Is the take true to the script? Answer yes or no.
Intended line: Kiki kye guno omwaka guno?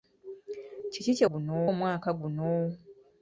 yes